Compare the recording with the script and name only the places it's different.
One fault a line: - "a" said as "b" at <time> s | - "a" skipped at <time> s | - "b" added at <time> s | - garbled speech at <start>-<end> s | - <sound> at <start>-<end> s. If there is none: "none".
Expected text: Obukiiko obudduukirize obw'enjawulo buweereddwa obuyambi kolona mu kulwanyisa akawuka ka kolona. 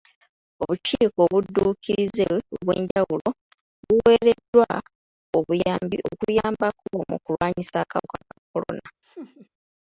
- dropout at 2.9-3.0 s
- "kolona" said as "okuyambako" at 6.1 s
- laugh at 9.0-9.5 s